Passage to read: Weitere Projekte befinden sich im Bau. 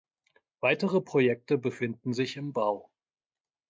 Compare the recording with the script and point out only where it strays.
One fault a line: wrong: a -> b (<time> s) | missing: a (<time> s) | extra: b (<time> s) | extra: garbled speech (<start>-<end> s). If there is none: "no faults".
no faults